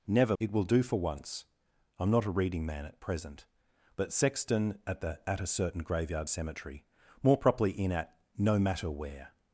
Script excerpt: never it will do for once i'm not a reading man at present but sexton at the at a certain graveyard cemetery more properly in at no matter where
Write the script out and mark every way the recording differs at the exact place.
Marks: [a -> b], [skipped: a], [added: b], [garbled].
never it will do for once i'm not a reading man at present but sexton at the at a certain graveyard cemetery more properly in at no matter where